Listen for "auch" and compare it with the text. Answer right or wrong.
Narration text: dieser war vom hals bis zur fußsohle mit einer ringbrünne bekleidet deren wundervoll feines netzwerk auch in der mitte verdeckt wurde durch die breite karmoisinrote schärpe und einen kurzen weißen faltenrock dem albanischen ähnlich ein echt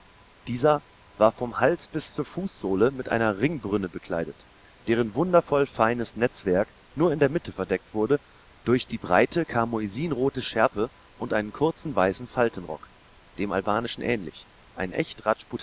wrong